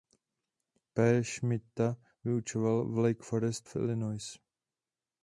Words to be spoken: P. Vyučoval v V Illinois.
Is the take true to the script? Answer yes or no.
no